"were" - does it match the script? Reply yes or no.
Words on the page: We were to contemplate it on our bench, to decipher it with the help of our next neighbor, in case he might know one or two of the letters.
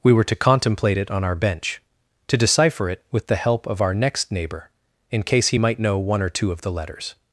yes